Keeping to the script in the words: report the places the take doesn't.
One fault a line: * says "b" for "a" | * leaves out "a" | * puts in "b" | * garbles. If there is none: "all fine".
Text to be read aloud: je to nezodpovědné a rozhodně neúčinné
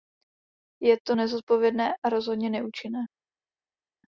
all fine